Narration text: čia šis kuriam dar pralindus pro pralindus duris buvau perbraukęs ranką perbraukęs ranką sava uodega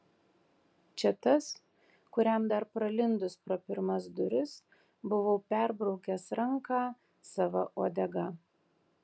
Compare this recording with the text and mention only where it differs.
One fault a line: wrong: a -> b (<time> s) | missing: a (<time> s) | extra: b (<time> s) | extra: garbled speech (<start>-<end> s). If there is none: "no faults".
wrong: šis -> tas (1.2 s)
wrong: pralindus -> pirmas (3.7 s)
missing: perbraukęs ranką (6.8 s)